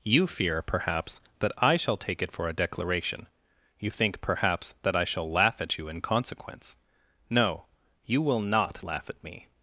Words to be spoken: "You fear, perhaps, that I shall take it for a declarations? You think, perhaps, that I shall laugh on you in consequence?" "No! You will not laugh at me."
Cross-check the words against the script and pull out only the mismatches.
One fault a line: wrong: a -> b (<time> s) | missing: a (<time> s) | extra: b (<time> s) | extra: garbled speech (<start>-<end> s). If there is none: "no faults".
wrong: declarations -> declaration (2.5 s)
wrong: on -> at (5.6 s)